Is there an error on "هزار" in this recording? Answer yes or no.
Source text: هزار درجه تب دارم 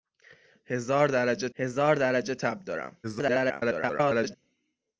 no